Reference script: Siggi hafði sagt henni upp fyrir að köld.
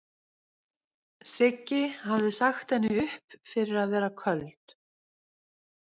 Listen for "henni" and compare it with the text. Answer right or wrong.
right